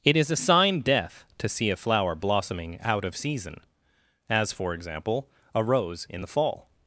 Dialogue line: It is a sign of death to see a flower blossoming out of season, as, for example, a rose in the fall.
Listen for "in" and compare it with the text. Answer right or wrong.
right